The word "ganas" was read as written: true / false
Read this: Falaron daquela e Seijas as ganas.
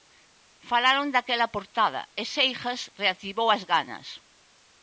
true